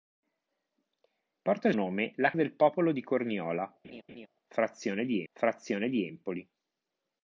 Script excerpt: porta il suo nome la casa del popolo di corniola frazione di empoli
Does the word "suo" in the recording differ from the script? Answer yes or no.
yes